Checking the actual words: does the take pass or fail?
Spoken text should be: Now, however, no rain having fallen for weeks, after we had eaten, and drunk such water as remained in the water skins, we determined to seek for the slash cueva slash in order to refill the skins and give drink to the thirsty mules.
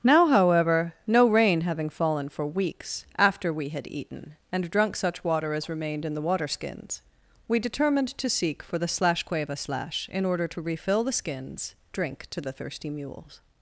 fail